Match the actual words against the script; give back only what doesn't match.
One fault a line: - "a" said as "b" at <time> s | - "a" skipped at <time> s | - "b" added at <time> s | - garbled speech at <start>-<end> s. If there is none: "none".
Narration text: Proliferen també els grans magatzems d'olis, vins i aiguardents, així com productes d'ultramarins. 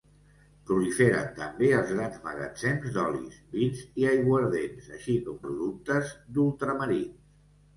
none